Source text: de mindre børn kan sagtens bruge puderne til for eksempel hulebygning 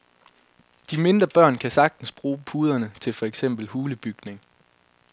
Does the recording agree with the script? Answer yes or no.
yes